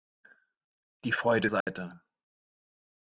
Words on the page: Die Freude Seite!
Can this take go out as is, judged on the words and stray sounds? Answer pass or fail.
fail